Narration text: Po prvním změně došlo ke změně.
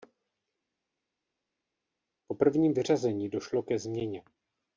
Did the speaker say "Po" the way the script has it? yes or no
yes